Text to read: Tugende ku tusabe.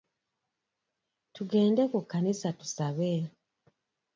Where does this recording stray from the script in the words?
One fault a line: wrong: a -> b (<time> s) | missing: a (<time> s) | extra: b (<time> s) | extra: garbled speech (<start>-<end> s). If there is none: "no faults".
extra: kkanisa (2.0 s)